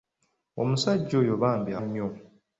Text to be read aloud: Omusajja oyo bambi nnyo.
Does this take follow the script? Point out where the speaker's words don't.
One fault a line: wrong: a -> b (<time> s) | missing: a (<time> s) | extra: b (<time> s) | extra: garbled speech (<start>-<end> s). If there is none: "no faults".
no faults